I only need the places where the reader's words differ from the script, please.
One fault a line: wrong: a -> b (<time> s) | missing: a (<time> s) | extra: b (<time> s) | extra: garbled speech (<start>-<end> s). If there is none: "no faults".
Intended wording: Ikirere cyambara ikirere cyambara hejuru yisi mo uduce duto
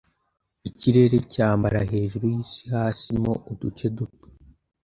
missing: ikirere cyambara (1.8 s)
extra: hasi (2.7 s)